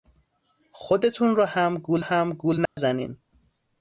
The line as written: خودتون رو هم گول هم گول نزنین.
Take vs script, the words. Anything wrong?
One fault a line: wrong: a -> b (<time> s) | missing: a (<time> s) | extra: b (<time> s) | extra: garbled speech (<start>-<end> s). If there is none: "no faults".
no faults